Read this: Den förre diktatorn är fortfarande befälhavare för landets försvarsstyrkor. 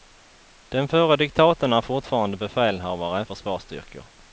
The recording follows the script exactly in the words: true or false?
false